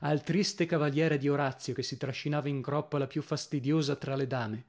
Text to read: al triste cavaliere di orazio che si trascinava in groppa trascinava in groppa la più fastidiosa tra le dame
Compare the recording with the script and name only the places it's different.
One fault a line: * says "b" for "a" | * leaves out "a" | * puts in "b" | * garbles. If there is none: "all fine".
* leaves out "trascinava in groppa"